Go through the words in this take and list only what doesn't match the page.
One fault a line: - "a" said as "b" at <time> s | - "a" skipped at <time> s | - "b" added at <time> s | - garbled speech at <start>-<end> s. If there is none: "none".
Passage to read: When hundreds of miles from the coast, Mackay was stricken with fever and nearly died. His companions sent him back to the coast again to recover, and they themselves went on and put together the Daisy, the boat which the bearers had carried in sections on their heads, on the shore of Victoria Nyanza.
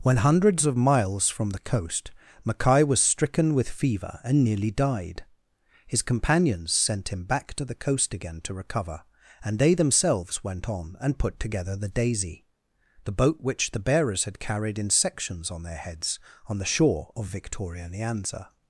none